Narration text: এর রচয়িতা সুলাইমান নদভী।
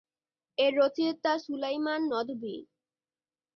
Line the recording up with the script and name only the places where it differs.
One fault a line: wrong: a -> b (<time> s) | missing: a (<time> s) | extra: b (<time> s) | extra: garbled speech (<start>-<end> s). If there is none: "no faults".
no faults